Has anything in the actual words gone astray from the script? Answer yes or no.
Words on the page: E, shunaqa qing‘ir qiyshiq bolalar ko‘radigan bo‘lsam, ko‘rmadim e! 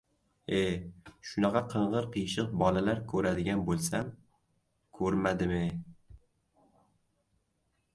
no